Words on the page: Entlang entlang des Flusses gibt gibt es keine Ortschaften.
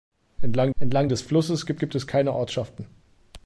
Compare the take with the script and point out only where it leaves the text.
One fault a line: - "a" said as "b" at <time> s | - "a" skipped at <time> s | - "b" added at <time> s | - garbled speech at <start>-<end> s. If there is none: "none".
none